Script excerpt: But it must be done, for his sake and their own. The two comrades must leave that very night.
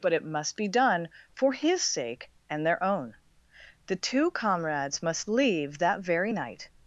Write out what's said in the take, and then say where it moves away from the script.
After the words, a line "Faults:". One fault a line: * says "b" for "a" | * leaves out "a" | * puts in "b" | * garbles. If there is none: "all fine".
But it must be done, for his sake and their own. The two comrades must leave that very night.
Faults:
all fine